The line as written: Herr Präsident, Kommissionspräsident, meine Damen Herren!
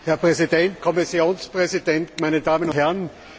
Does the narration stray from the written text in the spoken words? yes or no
no